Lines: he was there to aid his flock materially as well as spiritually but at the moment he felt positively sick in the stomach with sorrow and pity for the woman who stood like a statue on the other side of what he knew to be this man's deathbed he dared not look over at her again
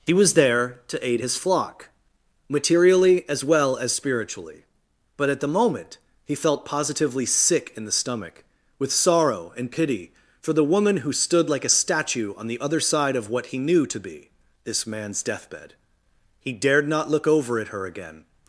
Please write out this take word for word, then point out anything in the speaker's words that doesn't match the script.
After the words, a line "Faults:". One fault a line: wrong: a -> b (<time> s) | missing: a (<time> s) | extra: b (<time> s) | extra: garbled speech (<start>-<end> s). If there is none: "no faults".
he was there to aid his flock materially as well as spiritually but at the moment he felt positively sick in the stomach with sorrow and pity for the woman who stood like a statue on the other side of what he knew to be this man's deathbed he dared not look over at her again
Faults:
no faults